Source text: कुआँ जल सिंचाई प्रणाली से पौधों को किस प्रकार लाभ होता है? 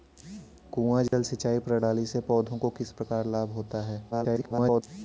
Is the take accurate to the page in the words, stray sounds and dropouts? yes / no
no